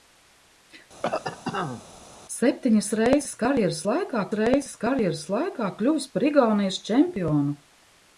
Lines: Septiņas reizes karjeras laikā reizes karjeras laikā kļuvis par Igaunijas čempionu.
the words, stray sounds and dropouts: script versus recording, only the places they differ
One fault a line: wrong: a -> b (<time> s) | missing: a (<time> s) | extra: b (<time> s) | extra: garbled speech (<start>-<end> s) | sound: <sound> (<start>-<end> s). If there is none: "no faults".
sound: cough (1.0-1.8 s)